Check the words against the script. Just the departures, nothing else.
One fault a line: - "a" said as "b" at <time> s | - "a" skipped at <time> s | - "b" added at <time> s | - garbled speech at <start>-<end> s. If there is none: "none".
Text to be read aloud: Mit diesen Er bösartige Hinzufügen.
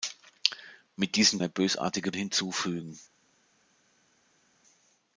none